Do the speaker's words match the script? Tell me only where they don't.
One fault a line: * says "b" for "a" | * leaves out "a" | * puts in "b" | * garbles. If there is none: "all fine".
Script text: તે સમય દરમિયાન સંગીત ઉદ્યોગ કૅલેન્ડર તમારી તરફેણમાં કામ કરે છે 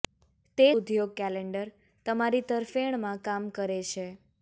* leaves out "સમય દરમિયાન સંગીત"